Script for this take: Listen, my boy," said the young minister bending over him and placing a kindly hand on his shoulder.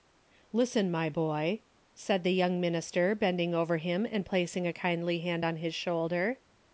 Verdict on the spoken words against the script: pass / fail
pass